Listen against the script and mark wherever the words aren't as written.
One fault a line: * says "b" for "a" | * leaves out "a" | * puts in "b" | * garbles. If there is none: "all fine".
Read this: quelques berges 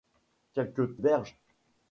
all fine